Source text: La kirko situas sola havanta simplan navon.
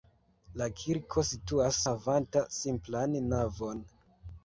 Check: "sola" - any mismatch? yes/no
yes